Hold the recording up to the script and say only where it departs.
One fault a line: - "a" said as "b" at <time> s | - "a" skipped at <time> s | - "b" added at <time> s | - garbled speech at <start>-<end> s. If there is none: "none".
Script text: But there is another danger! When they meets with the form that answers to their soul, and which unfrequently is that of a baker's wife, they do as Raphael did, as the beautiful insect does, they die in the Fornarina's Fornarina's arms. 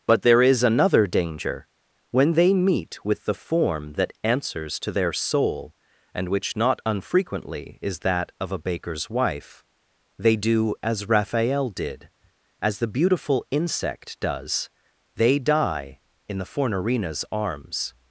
- "meets" said as "meet" at 2.5 s
- "not" added at 6.6 s
- "Fornarina's" skipped at 17.2 s